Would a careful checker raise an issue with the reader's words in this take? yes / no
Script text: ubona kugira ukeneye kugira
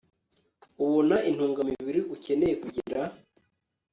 yes